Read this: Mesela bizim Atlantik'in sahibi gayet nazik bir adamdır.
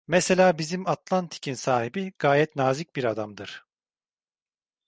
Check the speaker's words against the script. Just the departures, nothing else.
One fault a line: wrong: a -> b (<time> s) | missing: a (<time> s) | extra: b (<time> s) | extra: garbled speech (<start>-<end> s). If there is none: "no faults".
no faults